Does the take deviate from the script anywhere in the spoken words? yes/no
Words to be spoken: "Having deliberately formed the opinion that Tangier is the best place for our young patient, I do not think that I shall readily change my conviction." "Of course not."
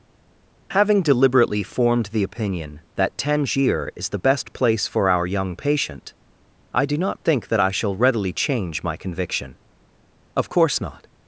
no